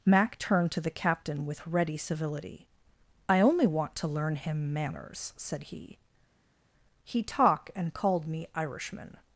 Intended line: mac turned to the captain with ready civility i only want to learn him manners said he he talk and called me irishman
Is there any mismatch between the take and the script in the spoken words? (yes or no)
no